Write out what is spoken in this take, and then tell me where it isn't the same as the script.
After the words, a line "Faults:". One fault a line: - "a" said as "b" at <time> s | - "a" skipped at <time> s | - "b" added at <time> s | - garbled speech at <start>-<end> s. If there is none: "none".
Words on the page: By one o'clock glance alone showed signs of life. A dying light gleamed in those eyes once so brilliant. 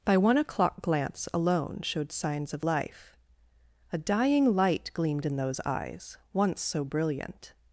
By one o'clock glance alone showed signs of life. A dying light gleamed in those eyes once so brilliant.
Faults:
none